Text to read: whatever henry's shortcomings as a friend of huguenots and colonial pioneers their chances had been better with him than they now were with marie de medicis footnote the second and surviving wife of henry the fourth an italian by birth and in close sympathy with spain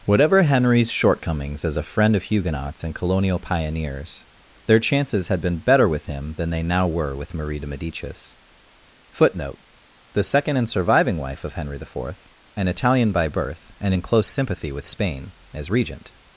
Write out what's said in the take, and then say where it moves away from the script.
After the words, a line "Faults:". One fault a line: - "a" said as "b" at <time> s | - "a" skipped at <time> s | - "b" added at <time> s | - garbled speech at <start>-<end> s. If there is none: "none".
whatever henry's shortcomings as a friend of huguenots and colonial pioneers their chances had been better with him than they now were with marie de medicis footnote the second and surviving wife of henry the fourth an italian by birth and in close sympathy with spain as regent
Faults:
- "as regent" added at 15.5 s